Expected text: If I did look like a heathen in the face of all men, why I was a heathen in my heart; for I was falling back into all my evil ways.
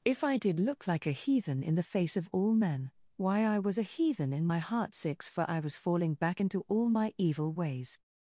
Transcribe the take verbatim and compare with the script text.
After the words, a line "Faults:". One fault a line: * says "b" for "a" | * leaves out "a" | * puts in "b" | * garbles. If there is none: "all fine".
If I did look like a heathen in the face of all men, why I was a heathen in my heart; six for I was falling back into all my evil ways.
Faults:
* puts in "six"